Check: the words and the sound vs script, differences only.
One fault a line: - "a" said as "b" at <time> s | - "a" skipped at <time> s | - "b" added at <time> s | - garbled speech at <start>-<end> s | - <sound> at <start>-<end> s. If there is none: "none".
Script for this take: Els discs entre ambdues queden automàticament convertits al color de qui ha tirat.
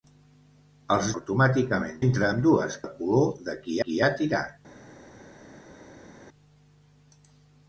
- "discs" said as "automàticament" at 1.2 s
- "queden automàticament convertits" skipped at 2.8 s
- "qui" added at 3.8 s